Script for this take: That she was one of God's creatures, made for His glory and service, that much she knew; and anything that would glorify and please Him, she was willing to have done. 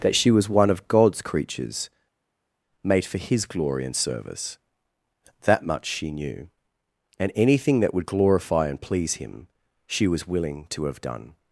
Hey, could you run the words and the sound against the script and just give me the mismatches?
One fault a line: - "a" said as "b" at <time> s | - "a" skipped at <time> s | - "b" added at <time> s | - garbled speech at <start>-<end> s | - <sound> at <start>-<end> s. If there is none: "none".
none